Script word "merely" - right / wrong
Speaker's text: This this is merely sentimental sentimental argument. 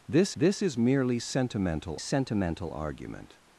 right